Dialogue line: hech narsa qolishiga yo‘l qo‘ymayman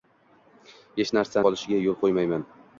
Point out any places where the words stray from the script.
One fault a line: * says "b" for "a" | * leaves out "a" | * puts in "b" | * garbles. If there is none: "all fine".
all fine